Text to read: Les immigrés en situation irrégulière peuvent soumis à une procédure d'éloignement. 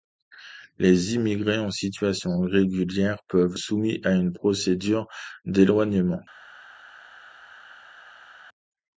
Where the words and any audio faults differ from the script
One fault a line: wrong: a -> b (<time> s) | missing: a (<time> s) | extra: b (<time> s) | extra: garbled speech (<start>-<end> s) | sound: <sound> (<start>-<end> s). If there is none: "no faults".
no faults